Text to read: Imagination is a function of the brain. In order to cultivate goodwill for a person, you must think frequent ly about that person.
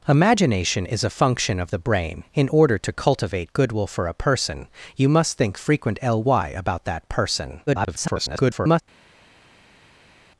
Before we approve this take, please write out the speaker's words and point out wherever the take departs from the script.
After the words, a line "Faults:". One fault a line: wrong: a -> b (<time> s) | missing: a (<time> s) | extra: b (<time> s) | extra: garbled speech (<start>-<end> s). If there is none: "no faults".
Imagination is a function of the brain. In order to cultivate goodwill for a person, you must think frequent ly about that person. [garbled]
Faults:
extra: garbled speech (7.7-8.8 s)